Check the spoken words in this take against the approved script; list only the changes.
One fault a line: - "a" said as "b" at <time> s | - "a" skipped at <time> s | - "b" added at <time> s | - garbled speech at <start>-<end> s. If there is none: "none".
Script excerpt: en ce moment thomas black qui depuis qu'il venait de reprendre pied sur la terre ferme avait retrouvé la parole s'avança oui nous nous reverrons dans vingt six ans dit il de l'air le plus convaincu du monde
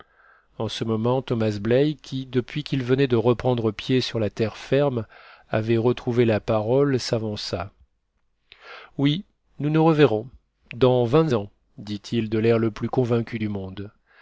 - "six" skipped at 11.3 s